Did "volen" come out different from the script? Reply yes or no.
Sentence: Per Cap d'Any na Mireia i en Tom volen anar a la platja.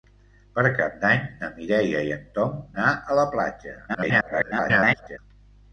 yes